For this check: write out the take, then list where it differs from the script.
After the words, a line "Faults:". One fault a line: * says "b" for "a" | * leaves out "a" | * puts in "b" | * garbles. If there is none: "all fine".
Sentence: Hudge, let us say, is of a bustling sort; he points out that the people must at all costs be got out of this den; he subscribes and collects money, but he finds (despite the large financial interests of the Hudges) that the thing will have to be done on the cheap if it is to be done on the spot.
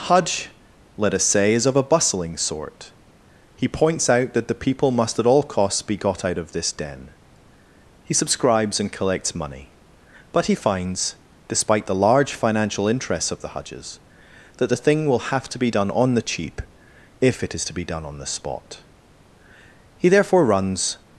Hudge, let us say, is of a bustling sort; he points out that the people must at all costs be got out of this den; he subscribes and collects money, but he finds (despite the large financial interests of the Hudges) that the thing will have to be done on the cheap if it is to be done on the spot. He therefore, runs
Faults:
* puts in "He therefore runs"